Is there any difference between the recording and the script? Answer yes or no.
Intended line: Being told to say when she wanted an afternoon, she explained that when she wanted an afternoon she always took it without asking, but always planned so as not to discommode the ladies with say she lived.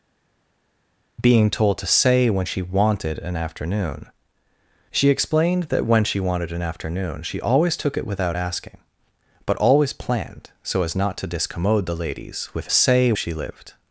no